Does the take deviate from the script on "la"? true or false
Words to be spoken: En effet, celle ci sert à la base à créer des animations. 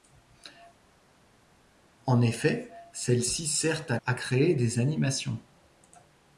true